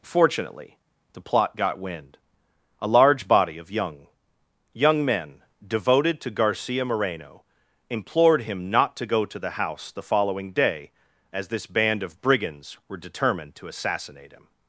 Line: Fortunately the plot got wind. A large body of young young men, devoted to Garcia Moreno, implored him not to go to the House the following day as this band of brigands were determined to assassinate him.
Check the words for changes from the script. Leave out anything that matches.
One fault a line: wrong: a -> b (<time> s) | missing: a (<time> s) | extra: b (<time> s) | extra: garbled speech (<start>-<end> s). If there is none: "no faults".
no faults